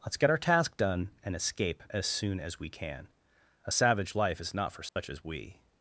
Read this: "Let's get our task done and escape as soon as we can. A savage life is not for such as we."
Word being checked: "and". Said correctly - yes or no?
yes